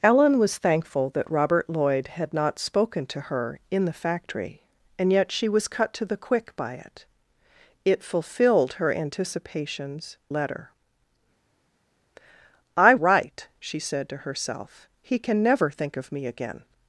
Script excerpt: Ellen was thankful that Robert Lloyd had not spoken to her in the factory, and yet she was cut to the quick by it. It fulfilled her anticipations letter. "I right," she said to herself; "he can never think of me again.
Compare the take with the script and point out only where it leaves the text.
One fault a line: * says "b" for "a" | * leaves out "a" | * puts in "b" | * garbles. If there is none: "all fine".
all fine